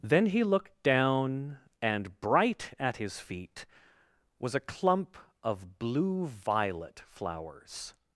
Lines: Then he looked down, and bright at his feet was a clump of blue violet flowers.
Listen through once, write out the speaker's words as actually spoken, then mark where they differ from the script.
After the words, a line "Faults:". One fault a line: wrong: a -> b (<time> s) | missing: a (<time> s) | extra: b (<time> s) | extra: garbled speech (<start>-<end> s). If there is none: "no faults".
Then he looked down, and bright at his feet was a clump of blue violet flowers.
Faults:
no faults